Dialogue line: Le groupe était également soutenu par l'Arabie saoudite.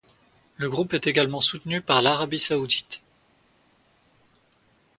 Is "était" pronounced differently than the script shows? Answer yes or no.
yes